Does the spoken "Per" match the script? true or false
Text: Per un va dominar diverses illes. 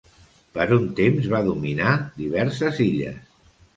true